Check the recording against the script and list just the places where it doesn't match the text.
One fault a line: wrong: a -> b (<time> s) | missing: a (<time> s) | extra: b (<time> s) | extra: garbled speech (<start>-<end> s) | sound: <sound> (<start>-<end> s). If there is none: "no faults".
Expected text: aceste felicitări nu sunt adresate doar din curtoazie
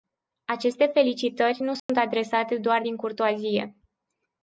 sound: dropout (1.8-1.9 s)